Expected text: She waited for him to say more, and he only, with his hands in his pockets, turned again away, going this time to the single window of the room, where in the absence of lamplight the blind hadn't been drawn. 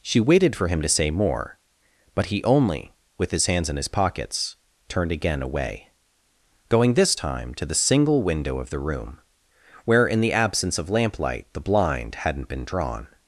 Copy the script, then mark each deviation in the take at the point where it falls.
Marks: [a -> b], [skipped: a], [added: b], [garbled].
She waited for him to say more, [and -> but] he only, with his hands in his pockets, turned again away, going this time to the single window of the room, where in the absence of lamplight the blind hadn't been drawn.